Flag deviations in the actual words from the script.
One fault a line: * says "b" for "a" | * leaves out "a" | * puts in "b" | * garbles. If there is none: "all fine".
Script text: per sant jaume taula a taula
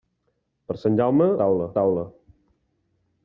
all fine